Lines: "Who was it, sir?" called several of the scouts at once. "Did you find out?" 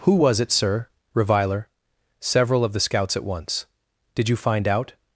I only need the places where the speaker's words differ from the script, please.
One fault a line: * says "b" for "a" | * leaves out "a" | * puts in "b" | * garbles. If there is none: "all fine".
* says "reviler" for "called"